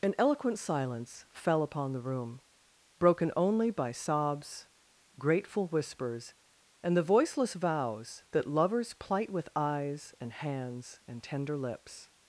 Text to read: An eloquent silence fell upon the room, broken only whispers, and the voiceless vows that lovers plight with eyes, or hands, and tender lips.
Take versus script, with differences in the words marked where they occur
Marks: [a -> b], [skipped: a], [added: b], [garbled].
An eloquent silence fell upon the room, broken only [added: by sobs grateful] whispers, and the voiceless vows that lovers plight with eyes, [or -> and] hands, and tender lips.